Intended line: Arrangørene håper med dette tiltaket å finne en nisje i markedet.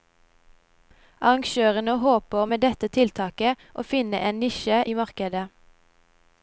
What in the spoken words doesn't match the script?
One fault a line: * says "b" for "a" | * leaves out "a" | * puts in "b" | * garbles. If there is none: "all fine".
all fine